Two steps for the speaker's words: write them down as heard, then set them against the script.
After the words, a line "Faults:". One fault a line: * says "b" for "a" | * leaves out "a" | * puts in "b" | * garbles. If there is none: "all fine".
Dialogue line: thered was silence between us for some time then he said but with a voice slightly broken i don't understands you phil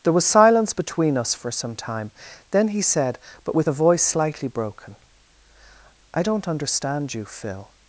there was silence between us for some time then he said but with a voice slightly broken i don't understand you phil
Faults:
* says "there" for "thered"
* says "understand" for "understands"